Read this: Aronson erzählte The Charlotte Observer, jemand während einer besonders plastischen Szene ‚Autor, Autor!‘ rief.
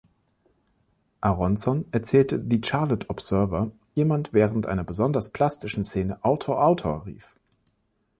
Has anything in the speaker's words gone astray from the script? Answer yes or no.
no